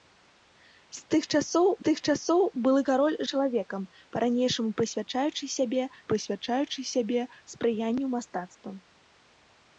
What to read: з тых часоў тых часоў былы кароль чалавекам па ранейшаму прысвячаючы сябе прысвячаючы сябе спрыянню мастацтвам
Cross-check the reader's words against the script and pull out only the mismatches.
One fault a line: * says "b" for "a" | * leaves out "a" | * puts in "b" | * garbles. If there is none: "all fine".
all fine